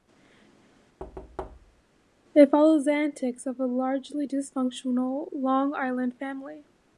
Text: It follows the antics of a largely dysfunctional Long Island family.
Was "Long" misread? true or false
false